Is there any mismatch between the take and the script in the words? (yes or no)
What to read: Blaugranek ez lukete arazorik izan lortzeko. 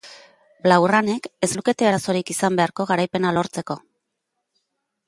yes